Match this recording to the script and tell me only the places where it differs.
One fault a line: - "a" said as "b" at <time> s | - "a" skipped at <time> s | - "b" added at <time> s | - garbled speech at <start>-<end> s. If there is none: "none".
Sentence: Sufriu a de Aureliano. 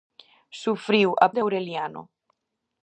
none